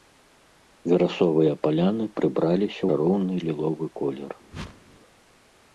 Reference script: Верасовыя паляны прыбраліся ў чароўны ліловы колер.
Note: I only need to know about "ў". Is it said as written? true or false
false